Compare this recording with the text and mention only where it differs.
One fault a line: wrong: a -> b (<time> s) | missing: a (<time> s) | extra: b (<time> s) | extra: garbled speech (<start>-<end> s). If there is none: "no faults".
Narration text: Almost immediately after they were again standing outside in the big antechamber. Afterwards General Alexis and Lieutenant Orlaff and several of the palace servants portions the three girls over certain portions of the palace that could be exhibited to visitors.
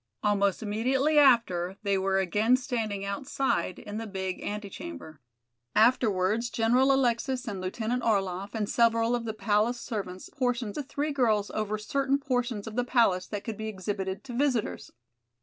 no faults